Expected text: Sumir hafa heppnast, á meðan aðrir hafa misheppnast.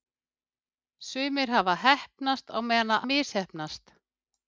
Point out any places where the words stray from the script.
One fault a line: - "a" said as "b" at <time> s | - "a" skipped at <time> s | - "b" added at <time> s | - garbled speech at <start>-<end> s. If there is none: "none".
- "aðrir hafa" skipped at 3.0 s